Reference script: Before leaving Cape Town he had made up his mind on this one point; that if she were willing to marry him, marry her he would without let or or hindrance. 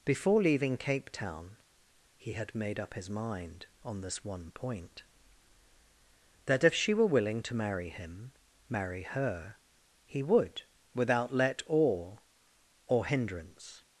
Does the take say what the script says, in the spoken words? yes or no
yes